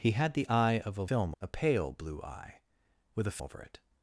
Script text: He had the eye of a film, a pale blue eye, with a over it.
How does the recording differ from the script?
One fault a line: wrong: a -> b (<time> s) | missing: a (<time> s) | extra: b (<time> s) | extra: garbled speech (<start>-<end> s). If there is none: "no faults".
no faults